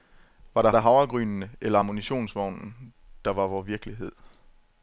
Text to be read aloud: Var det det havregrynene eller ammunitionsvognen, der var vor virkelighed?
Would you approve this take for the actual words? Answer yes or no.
yes